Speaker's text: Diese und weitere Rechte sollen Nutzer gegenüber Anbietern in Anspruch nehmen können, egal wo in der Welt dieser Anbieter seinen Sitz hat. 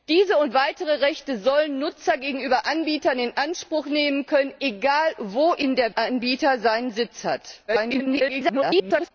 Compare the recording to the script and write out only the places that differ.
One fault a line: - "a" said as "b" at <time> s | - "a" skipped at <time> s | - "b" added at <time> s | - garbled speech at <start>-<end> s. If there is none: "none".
- "Welt dieser" skipped at 5.9 s
- garbled speech at 7.7-9.1 s